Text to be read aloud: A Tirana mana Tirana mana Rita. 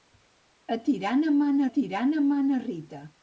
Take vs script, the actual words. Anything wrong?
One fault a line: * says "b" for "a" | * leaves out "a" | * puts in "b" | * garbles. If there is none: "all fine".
all fine